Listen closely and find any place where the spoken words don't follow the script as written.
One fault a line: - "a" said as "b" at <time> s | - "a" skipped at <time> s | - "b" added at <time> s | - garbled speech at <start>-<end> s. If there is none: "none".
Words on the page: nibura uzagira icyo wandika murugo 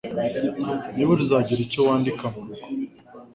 none